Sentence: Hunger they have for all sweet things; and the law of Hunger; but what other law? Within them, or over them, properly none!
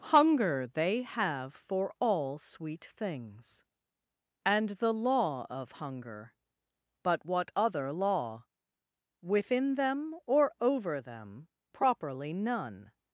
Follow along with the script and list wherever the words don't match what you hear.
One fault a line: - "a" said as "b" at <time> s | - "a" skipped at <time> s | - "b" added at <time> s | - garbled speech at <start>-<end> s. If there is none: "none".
none